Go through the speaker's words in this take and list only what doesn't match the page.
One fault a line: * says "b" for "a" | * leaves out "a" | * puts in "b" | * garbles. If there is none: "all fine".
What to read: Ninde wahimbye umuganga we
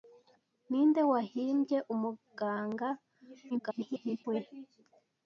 * garbles